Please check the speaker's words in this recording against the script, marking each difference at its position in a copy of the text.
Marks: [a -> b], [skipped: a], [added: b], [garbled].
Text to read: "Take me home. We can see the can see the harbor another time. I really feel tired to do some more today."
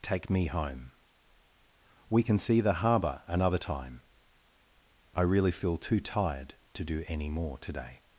"Take me home. We can see the [skipped: can see the] harbor another time. I really feel [added: too] tired to do [some -> any] more today."